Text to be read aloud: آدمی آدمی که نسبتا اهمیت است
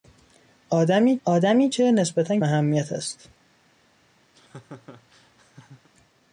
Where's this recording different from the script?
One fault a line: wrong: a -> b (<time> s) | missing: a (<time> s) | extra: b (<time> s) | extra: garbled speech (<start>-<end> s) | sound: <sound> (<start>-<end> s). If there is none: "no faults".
sound: laugh (4.3-5.9 s)